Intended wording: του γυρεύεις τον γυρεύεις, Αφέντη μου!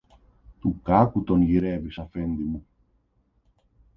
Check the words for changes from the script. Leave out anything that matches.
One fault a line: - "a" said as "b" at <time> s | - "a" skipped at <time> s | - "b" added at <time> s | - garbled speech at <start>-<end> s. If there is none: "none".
- "γυρεύεις" said as "κάκου" at 0.8 s